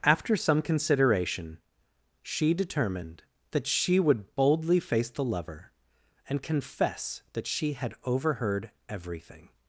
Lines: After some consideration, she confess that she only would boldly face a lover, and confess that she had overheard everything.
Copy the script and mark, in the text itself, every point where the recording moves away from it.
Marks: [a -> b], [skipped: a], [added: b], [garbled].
After some consideration, she [confess -> determined] that she [skipped: only] would boldly face [a -> the] lover, and confess that she had overheard everything.